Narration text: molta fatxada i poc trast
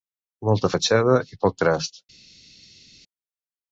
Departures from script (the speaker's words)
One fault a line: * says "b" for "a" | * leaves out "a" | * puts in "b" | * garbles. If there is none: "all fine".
all fine